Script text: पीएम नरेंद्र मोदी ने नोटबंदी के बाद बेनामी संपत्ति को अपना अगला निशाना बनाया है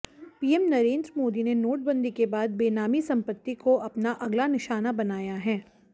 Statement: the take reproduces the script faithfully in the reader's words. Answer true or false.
true